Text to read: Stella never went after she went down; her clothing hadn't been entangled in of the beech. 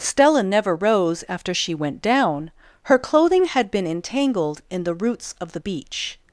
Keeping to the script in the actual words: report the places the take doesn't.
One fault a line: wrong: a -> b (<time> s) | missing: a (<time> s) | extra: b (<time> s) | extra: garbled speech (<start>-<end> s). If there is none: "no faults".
wrong: went -> rose (0.8 s)
wrong: hadn't -> had (3.5 s)
extra: the roots (4.8 s)